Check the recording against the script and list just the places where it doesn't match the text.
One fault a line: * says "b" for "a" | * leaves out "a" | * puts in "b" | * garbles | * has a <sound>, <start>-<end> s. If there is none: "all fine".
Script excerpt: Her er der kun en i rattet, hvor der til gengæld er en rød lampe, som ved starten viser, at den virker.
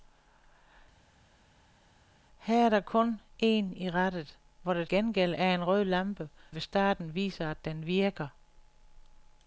* leaves out "til"
* leaves out "som"